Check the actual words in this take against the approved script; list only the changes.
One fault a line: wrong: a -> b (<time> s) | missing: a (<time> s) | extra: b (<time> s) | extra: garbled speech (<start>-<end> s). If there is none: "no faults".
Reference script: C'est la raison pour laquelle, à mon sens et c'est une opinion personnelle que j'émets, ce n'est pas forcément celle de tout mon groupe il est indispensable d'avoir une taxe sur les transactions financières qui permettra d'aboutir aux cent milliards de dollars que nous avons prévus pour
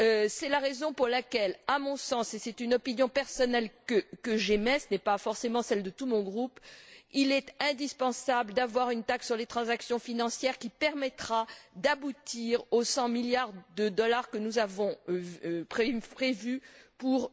no faults